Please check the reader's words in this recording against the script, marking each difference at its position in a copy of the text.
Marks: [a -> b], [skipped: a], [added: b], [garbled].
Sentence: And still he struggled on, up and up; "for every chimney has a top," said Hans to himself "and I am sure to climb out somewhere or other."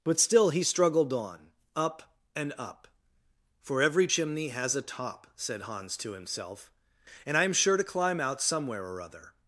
[And -> But] still he struggled on, up and up; "for every chimney has a top," said Hans to himself "and I am sure to climb out somewhere or other."